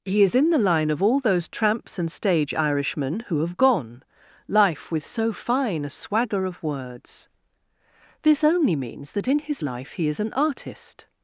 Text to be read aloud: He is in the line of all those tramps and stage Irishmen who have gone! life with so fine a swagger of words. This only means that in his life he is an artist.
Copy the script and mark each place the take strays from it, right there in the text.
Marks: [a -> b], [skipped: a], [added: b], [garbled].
He is in the line of all those tramps and stage Irishmen who have gone! life with so fine a swagger of words. This only means that in his life he is an artist.